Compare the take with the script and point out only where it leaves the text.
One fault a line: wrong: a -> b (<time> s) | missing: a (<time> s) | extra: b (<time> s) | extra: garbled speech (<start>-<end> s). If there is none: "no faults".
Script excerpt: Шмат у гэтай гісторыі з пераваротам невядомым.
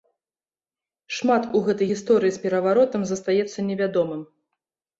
extra: застаецца (3.1 s)